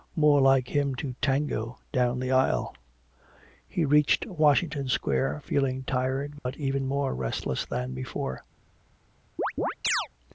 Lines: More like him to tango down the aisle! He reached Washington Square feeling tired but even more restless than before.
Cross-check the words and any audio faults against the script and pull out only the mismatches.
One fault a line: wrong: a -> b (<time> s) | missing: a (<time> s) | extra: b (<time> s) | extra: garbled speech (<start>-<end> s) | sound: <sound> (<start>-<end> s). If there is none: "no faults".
sound: dropout (6.4-6.5 s)
sound: chirp (9.4-10.1 s)